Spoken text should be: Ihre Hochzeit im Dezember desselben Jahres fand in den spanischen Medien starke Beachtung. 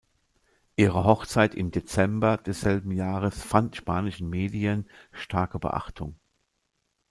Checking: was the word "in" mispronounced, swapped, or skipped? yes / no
yes